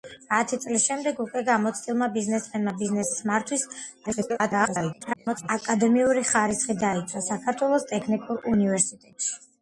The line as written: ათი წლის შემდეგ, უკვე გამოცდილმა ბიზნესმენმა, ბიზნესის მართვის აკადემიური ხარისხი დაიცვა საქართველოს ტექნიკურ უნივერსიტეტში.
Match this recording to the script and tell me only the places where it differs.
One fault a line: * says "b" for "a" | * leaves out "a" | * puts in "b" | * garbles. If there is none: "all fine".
* garbles